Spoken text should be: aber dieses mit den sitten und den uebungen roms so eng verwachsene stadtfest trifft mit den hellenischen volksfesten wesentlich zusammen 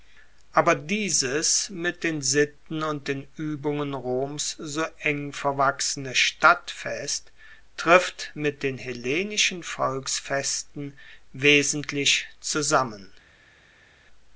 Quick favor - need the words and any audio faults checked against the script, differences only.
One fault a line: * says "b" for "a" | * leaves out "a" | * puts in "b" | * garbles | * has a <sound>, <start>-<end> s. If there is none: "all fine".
all fine